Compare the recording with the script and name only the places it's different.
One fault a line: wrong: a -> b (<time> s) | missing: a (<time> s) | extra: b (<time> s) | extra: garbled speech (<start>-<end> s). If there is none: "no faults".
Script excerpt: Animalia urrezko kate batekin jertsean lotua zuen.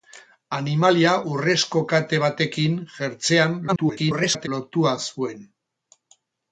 extra: garbled speech (3.7-4.5 s)